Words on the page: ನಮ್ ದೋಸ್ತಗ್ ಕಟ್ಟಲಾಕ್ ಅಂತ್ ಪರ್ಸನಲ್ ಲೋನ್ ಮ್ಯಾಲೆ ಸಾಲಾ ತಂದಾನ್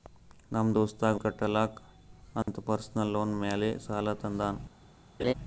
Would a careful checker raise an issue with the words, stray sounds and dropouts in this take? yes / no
yes